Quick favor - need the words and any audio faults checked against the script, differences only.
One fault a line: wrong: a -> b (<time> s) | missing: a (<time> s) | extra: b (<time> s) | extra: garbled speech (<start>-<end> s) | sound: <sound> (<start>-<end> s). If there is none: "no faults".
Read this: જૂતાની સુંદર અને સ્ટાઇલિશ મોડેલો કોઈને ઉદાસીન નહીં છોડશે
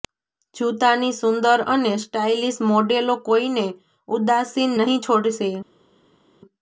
no faults